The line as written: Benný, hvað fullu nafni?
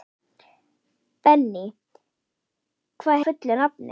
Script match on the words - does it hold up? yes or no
yes